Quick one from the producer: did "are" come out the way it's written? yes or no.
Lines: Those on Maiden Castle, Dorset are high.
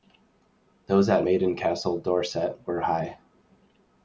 no